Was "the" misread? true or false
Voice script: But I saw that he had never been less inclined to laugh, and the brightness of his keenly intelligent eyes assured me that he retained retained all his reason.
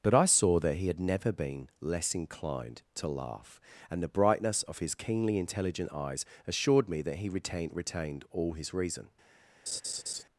false